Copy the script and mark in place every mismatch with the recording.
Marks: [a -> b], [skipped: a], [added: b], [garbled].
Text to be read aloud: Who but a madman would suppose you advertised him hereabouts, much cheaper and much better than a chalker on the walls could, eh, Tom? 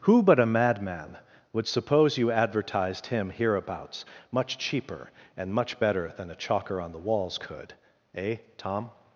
Who but a madman would suppose you advertised him hereabouts, much cheaper and much better than a chalker on the walls could, eh, Tom?